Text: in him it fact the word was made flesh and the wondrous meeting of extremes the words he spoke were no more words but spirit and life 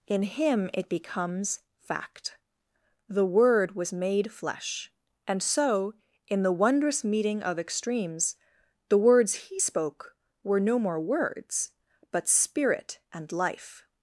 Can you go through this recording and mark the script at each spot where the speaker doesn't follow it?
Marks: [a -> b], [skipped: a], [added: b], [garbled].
in him it [added: becomes] fact the word was made flesh and [added: so in] the wondrous meeting of extremes the words he spoke were no more words but spirit and life